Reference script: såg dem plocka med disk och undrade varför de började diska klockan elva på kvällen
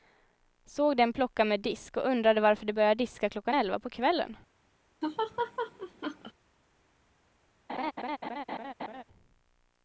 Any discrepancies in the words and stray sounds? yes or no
yes